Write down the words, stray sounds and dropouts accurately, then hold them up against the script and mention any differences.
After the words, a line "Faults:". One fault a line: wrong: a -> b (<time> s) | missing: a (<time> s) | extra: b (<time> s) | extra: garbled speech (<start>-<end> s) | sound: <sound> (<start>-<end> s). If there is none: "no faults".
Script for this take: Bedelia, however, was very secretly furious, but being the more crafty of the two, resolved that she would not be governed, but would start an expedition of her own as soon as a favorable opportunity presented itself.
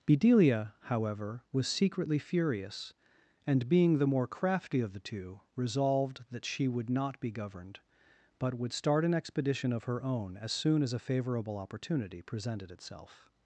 Bedelia, however, was secretly furious, and being the more crafty of the two, resolved that she would not be governed, but would start an expedition of her own as soon as a favorable opportunity presented itself.
Faults:
missing: very (1.7 s)
wrong: but -> and (3.5 s)